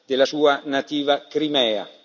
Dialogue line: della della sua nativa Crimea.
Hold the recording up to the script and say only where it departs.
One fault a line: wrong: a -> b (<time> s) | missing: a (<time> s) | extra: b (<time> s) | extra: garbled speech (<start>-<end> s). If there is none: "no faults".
missing: della (0.2 s)